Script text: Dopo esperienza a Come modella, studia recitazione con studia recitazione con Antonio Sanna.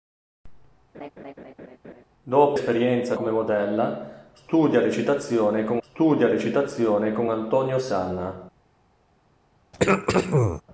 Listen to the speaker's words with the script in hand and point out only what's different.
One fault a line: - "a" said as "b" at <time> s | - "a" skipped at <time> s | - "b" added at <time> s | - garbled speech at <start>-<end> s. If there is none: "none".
none